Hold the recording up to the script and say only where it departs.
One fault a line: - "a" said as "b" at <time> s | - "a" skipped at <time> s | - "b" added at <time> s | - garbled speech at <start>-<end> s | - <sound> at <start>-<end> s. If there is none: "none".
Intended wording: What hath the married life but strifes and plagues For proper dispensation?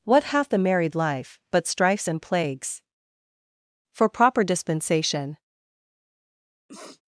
- sniff at 6.7-7.0 s